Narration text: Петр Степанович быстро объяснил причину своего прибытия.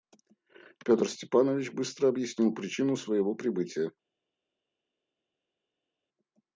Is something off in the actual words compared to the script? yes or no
no